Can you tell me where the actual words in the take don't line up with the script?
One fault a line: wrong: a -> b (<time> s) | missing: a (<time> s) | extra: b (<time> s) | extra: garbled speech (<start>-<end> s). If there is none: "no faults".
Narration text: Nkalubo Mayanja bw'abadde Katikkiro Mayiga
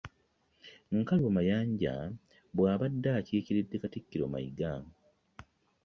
extra: akiikiridde (3.2 s)